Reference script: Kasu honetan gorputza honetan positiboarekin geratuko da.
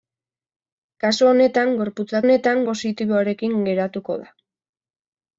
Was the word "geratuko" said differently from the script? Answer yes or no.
no